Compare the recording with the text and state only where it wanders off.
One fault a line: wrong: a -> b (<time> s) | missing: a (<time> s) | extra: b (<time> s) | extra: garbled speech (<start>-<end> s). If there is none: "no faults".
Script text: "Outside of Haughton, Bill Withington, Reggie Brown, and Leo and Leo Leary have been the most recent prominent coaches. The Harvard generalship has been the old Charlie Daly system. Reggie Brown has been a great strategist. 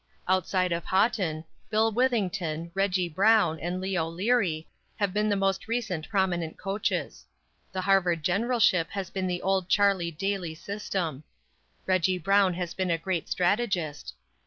missing: and Leo (4.1 s)